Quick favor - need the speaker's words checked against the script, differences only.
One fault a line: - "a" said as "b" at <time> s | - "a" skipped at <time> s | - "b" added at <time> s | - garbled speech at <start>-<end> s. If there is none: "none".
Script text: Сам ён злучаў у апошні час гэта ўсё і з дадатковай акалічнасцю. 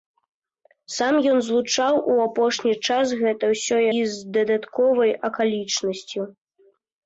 none